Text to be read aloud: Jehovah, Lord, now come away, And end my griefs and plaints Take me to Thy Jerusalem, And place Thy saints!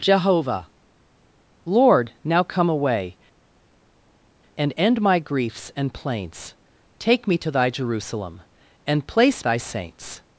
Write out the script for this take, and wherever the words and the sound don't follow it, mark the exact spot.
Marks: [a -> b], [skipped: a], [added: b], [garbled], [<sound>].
Jehovah, Lord, now come away, And end my griefs and plaints Take me to Thy Jerusalem, And place Thy saints!